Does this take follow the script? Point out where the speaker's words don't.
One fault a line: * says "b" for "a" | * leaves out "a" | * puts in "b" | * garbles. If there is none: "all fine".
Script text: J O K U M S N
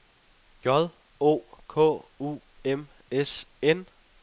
all fine